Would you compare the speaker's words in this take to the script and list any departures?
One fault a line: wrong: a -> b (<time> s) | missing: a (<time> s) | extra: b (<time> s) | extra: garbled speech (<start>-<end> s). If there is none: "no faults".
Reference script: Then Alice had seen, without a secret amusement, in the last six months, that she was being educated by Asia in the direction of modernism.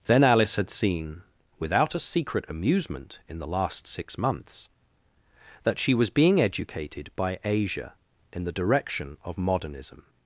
no faults